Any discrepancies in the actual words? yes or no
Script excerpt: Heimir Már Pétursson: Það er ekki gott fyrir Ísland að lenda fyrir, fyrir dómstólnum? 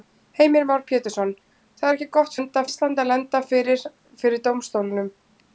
yes